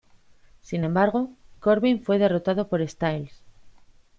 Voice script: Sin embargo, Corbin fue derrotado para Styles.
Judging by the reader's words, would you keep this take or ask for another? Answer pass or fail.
fail